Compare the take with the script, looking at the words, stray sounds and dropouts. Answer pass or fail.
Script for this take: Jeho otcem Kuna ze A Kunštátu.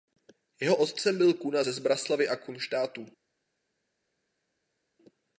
fail